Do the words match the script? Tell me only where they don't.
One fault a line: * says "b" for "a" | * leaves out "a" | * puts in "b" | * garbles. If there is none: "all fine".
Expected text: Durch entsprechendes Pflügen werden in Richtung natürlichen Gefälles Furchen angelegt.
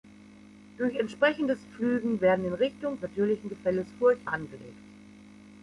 all fine